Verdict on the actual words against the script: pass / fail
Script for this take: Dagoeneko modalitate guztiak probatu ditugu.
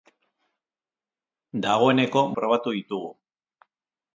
fail